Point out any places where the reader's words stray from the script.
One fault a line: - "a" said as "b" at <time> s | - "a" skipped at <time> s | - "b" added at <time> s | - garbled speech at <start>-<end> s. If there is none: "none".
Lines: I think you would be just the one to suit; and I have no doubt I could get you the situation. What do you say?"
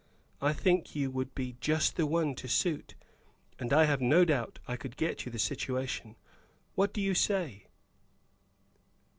none